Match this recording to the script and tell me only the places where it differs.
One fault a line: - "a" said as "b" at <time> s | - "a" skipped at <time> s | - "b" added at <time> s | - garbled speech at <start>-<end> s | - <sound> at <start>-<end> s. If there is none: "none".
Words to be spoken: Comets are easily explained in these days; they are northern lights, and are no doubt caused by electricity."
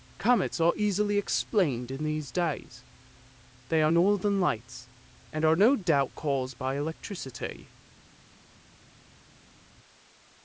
none